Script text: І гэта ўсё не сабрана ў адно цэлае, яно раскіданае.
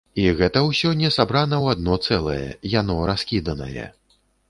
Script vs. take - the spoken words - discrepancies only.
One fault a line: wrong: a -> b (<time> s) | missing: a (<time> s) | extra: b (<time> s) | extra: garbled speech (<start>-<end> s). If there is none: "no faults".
no faults